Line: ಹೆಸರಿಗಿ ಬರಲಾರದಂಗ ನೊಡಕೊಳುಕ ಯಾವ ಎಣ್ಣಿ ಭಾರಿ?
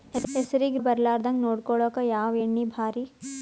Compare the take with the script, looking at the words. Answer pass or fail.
pass